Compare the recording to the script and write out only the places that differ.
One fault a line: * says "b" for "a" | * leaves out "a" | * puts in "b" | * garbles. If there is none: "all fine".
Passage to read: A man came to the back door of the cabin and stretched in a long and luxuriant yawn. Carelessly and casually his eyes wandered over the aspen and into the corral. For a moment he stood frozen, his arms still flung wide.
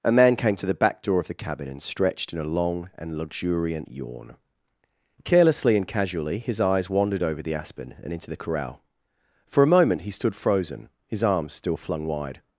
all fine